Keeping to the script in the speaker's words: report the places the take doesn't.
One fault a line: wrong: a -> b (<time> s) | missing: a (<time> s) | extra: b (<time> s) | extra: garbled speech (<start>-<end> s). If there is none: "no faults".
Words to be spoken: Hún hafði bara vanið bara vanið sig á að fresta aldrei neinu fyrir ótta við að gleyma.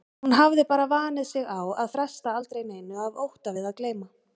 missing: bara vanið (1.3 s)
wrong: fyrir -> af (3.1 s)